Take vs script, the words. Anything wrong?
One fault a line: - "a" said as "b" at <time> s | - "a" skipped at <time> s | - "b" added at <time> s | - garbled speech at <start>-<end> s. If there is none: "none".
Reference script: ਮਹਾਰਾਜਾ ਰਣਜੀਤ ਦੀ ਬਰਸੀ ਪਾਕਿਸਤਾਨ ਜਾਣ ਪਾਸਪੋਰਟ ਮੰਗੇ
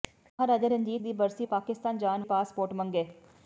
none